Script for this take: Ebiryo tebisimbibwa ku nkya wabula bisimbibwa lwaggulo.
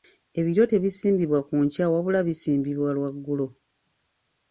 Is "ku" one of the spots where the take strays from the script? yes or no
no